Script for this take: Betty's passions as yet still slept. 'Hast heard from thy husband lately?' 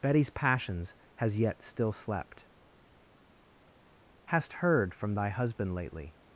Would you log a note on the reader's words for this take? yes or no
yes